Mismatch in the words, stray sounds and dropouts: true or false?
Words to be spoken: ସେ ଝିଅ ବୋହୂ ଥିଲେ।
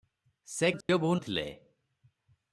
true